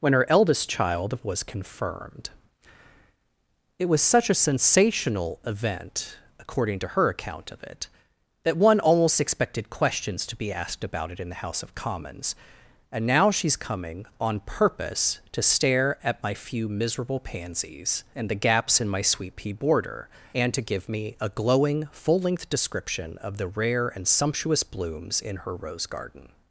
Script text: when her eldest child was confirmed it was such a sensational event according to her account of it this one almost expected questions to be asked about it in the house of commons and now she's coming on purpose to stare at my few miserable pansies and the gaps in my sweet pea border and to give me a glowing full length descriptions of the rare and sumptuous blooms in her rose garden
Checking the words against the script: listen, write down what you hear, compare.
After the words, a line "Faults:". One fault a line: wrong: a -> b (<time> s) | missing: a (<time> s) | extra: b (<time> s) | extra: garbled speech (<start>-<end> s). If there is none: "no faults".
when her eldest child was confirmed it was such a sensational event according to her account of it that one almost expected questions to be asked about it in the house of commons and now she's coming on purpose to stare at my few miserable pansies and the gaps in my sweet pea border and to give me a glowing full length description of the rare and sumptuous blooms in her rose garden
Faults:
wrong: this -> that (8.4 s)
wrong: descriptions -> description (22.5 s)